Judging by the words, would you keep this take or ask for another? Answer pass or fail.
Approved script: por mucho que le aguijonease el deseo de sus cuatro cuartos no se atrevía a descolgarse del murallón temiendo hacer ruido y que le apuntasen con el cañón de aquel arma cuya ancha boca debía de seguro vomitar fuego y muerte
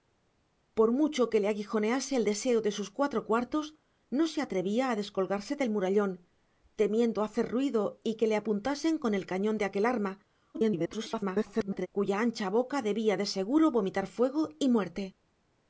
fail